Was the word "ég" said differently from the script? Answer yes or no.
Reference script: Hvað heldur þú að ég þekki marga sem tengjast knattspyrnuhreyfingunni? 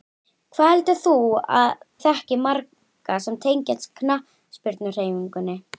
yes